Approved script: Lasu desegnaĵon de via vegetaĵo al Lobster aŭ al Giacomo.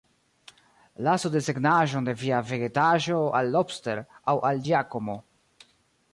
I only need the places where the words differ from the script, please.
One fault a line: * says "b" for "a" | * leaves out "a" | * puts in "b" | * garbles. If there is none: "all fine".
all fine